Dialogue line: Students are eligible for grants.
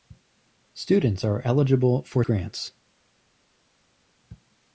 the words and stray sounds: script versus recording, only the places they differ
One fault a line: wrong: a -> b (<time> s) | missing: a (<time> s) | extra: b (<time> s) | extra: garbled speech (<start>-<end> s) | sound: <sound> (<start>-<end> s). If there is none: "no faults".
no faults